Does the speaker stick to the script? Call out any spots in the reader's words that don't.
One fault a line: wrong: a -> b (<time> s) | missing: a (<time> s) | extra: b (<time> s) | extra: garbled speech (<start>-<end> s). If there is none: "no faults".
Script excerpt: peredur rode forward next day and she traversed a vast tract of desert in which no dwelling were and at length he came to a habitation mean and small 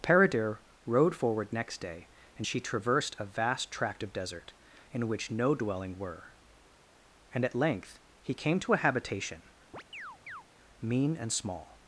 no faults